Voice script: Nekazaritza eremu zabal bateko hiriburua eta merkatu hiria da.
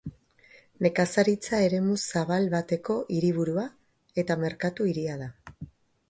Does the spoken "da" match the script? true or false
true